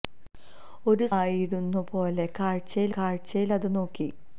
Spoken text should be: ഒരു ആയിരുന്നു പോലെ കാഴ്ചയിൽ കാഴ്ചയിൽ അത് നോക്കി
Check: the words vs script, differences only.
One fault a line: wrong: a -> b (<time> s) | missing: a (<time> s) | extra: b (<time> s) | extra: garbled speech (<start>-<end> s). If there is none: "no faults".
no faults